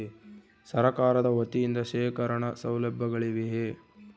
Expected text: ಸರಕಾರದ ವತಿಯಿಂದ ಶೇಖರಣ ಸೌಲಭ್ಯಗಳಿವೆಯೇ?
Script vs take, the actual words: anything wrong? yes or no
no